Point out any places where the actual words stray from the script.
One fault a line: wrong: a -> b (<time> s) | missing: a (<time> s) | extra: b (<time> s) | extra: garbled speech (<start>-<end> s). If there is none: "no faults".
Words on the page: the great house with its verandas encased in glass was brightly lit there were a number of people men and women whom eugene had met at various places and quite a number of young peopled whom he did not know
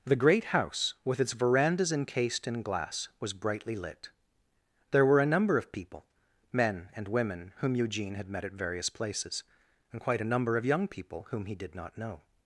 wrong: peopled -> people (10.9 s)